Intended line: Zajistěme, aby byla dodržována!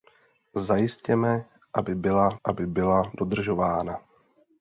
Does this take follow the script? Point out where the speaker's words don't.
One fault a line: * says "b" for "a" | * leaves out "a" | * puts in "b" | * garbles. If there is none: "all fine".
* puts in "aby byla"